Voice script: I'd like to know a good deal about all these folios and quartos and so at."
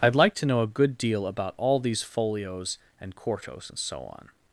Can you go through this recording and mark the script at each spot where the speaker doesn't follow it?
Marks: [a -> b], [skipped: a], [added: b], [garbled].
I'd like to know a good deal about all these folios and quartos and so [at." -> on]